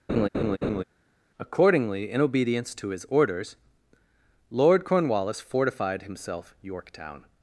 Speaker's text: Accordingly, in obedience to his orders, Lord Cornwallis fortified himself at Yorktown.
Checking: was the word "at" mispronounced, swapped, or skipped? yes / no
yes